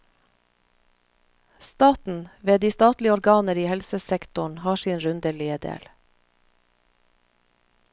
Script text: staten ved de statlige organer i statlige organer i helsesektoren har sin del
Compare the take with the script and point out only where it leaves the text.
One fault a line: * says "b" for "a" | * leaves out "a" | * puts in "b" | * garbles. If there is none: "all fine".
* leaves out "statlige organer i"
* puts in "rundelige"